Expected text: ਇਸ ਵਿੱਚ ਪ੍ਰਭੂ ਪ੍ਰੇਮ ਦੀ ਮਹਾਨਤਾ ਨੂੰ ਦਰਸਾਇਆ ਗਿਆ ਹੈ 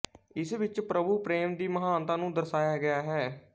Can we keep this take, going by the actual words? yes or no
yes